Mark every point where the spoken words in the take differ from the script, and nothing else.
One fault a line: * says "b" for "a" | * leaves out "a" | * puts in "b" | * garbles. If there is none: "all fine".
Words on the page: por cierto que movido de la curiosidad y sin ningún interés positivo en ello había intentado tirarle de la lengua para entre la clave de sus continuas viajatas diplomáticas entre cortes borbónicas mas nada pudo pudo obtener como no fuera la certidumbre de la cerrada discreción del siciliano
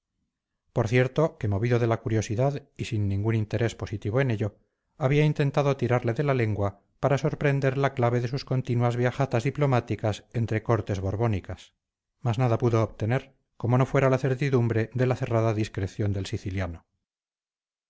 * says "sorprender" for "entre"
* leaves out "pudo"